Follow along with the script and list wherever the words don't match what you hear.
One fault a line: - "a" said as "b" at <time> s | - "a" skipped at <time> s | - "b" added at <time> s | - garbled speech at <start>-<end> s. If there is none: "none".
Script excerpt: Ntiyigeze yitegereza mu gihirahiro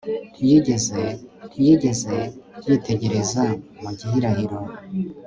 - "ntiyigeze" added at 1.5 s